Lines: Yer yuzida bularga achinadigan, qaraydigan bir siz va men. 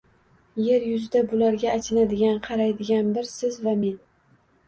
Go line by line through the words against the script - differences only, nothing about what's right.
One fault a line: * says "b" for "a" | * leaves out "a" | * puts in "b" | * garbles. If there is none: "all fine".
all fine